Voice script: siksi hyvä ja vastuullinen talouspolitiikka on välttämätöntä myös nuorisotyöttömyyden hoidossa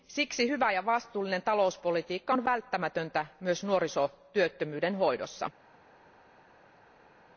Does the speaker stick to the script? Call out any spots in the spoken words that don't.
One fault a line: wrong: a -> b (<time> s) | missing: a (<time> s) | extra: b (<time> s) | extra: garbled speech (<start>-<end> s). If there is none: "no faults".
no faults